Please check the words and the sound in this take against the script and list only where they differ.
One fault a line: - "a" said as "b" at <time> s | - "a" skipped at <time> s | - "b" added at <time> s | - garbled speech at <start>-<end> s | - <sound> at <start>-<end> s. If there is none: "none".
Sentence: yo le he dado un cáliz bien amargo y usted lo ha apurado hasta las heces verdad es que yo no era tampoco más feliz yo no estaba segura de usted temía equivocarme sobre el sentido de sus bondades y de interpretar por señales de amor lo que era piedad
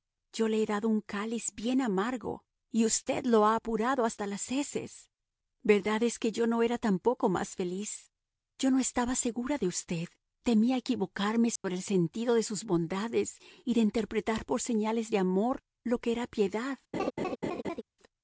- dropout at 11.6-11.6 s
- laugh at 16.9-17.8 s